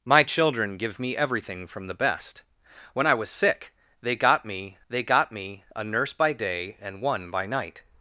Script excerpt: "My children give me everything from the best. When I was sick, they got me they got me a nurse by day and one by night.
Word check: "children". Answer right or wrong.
right